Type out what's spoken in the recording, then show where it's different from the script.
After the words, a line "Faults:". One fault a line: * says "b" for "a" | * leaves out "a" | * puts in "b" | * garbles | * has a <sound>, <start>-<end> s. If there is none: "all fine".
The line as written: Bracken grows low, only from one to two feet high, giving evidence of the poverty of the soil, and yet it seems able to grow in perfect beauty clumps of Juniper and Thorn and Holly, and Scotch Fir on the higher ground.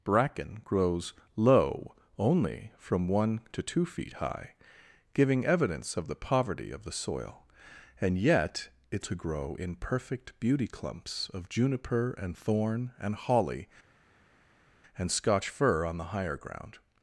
Bracken grows low, only from one to two feet high, giving evidence of the poverty of the soil, and yet it to grow in perfect beauty clumps of Juniper and Thorn and Holly, and Scotch Fir on the higher ground.
Faults:
* leaves out "seems able"